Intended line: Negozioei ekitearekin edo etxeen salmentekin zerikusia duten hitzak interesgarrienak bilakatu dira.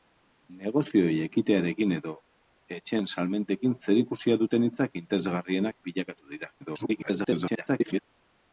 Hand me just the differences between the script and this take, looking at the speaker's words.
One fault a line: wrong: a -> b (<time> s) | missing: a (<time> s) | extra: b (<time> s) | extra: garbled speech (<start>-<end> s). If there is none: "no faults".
extra: garbled speech (6.6-8.0 s)